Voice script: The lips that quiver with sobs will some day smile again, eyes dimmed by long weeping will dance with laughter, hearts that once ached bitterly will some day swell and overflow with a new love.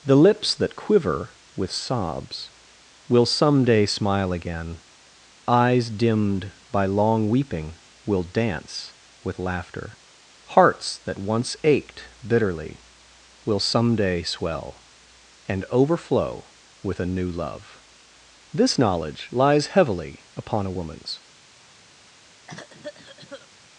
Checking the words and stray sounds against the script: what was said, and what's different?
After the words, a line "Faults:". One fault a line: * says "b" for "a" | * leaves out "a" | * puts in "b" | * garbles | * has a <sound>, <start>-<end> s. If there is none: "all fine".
The lips that quiver with sobs will some day smile again, eyes dimmed by long weeping will dance with laughter, hearts that once ached bitterly will some day swell and overflow with a new love. This knowledge lies heavily upon a woman's
Faults:
* puts in "This knowledge lies heavily upon a woman's"
* has a cough, 22.5-23.5 s